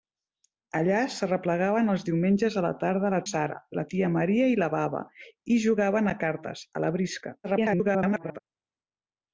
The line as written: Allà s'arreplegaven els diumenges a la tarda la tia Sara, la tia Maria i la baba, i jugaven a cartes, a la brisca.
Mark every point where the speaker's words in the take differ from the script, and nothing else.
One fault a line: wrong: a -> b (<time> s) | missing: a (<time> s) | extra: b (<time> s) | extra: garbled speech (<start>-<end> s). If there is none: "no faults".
missing: tia (3.2 s)
extra: garbled speech (7.4-8.4 s)